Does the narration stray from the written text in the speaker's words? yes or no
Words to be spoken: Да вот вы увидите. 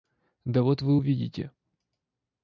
no